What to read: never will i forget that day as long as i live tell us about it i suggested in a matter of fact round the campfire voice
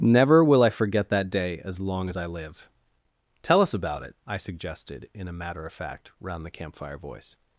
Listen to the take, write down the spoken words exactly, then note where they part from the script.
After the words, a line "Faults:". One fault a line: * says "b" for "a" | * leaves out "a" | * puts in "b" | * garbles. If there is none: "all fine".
never will i forget that day as long as i live tell us about it i suggested in a matter of fact round the campfire voice
Faults:
all fine